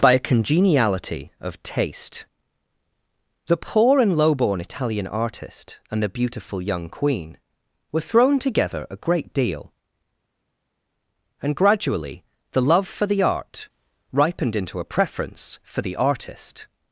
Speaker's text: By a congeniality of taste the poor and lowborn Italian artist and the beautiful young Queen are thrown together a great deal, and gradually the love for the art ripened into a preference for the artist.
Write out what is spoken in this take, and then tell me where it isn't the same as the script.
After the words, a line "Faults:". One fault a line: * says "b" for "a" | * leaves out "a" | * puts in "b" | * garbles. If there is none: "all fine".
By a congeniality of taste the poor and lowborn Italian artist and the beautiful young Queen were thrown together a great deal, and gradually the love for the art ripened into a preference for the artist.
Faults:
* says "were" for "are"